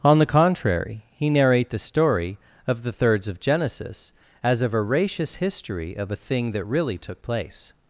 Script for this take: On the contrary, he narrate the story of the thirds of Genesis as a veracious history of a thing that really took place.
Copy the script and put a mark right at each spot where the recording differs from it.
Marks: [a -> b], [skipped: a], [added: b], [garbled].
On the contrary, he narrate the story of the thirds of Genesis as a veracious history of a thing that really took place.